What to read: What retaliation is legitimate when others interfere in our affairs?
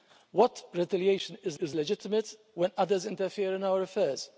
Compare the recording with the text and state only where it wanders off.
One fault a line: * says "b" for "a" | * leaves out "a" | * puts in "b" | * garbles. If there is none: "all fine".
* puts in "is"